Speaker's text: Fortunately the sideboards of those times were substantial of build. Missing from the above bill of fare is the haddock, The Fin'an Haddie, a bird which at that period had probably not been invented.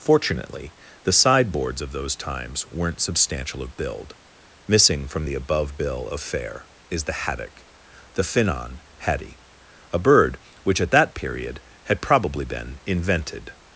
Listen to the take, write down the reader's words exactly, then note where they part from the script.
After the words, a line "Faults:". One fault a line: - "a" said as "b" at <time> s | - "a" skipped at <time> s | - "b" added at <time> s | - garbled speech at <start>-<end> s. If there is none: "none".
Fortunately the sideboards of those times weren't substantial of build. Missing from the above bill of fare is the haddock, The Fin'an Haddie, a bird which at that period had probably been invented.
Faults:
- "were" said as "weren't" at 2.7 s
- "not" skipped at 12.4 s